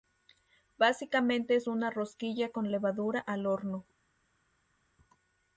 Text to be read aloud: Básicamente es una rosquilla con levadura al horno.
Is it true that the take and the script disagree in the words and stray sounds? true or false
false